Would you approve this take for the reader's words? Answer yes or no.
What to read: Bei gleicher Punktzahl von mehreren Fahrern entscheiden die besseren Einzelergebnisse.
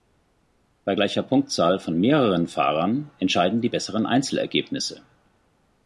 yes